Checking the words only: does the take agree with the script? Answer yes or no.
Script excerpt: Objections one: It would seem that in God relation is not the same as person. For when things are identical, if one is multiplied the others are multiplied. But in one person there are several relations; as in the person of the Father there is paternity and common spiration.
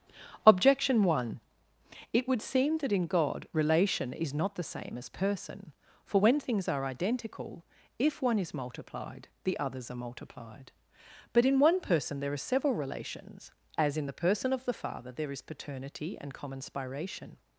no